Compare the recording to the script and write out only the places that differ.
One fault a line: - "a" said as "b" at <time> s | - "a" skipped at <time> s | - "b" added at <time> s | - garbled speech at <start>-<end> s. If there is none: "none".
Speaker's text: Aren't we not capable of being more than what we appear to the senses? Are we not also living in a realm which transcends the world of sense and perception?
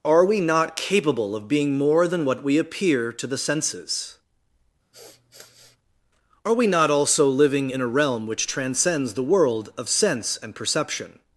- "Aren't" said as "Are" at 0.0 s